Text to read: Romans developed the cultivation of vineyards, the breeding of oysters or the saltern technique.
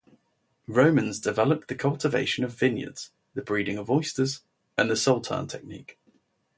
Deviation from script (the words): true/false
true